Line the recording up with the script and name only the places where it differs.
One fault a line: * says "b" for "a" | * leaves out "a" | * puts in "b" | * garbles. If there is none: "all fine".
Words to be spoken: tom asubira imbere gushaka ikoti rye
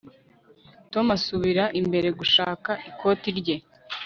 all fine